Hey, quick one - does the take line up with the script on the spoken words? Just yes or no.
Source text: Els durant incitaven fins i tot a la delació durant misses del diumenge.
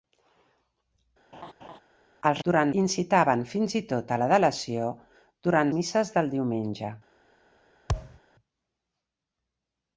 yes